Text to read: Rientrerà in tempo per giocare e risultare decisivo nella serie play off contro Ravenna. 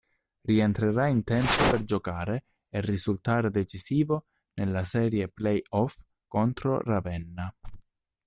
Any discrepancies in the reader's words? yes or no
no